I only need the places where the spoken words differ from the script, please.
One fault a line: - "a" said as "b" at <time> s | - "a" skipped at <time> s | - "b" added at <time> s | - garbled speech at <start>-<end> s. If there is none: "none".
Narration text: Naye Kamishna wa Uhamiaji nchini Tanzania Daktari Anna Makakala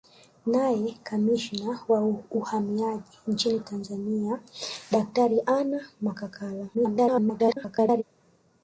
- garbled speech at 6.7-8.0 s